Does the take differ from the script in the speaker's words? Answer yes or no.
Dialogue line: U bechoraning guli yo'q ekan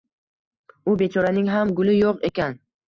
yes